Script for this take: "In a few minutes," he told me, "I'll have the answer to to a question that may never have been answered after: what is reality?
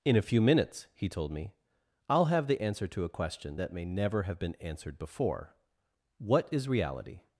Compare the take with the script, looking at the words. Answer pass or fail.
fail